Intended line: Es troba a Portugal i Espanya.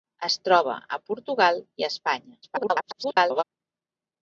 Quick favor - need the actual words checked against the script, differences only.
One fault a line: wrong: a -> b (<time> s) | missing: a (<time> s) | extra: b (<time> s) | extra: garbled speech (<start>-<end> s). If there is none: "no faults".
extra: garbled speech (2.4-3.4 s)